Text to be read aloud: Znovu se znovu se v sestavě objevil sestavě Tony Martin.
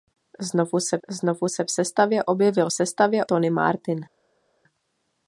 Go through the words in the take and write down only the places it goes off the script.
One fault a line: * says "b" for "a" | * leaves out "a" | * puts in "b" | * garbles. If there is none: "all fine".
all fine